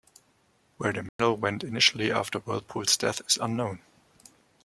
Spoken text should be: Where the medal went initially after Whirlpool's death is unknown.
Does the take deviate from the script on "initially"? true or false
false